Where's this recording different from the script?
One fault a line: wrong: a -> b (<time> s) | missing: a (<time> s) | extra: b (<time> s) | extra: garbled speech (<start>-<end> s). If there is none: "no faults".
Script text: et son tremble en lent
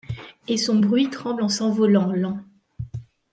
extra: bruit (0.8 s)
extra: s'envolant (1.5 s)